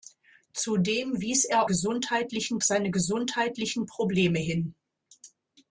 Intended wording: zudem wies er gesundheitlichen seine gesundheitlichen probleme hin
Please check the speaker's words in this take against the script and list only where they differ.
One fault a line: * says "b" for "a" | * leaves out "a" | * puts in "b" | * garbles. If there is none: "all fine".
all fine